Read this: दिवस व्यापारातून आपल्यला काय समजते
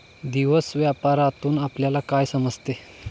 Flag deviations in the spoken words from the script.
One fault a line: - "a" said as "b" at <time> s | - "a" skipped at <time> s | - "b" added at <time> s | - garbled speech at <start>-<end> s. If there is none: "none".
none